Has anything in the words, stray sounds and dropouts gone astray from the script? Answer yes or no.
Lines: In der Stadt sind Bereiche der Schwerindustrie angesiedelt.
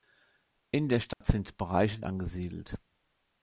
yes